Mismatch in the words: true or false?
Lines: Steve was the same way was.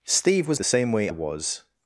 false